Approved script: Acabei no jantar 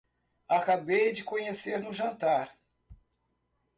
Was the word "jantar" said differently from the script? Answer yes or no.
no